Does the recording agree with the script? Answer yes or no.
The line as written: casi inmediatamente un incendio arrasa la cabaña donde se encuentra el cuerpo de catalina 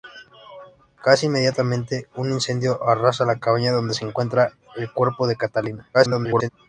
no